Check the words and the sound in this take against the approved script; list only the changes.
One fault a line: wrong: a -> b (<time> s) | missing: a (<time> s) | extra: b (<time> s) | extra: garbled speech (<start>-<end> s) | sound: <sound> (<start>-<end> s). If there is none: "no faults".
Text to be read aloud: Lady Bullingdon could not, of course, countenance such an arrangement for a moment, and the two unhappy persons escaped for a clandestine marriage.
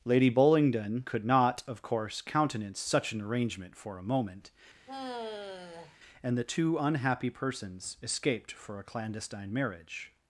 sound: sigh (4.9-6.0 s)